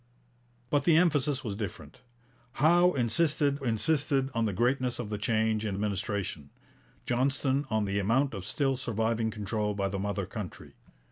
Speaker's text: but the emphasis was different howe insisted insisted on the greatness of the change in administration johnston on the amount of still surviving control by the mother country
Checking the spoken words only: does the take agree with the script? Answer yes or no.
yes